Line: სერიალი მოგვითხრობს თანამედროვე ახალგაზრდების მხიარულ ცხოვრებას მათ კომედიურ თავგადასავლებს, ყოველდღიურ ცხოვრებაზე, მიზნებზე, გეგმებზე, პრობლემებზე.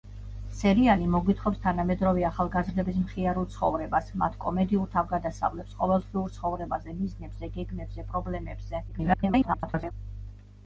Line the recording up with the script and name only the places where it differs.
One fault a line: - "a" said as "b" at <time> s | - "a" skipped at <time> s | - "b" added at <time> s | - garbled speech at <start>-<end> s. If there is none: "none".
- garbled speech at 8.9-9.9 s